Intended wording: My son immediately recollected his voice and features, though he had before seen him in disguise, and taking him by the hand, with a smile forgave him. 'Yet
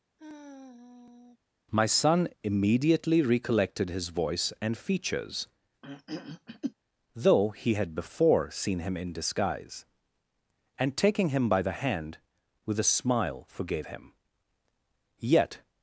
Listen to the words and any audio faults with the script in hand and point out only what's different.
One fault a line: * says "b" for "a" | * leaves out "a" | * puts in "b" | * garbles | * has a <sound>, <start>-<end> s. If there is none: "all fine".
* has a sigh, 0.2-1.4 s
* has a throat clearing, 5.8-6.7 s